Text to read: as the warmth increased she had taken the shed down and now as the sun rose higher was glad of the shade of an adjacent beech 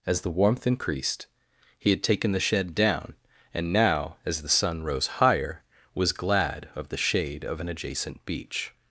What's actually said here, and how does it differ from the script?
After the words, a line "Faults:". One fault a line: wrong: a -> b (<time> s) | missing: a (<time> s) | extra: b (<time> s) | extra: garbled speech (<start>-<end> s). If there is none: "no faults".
as the warmth increased he had taken the shed down and now as the sun rose higher was glad of the shade of an adjacent beech
Faults:
wrong: she -> he (1.8 s)